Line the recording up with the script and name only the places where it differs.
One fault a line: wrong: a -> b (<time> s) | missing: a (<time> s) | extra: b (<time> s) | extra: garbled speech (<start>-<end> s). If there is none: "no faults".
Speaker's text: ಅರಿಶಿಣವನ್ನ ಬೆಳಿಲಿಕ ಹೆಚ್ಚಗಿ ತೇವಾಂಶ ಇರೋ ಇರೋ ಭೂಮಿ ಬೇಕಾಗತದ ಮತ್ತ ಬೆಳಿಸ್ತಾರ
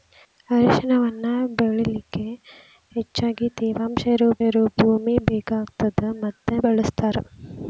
no faults